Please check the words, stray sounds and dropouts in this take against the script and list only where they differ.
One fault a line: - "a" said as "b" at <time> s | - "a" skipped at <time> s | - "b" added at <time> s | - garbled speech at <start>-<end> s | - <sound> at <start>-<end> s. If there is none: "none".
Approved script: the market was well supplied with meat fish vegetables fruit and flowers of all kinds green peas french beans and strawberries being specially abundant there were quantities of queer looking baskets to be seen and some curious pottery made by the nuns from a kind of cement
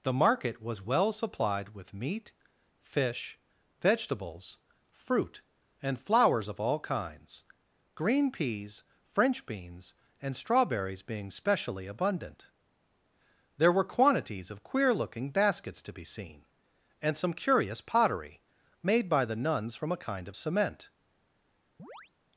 - chirp at 21.8-22.1 s